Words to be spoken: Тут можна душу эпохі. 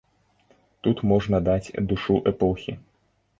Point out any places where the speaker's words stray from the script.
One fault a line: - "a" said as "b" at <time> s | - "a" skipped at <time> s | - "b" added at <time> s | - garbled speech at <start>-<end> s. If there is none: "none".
- "даць" added at 1.5 s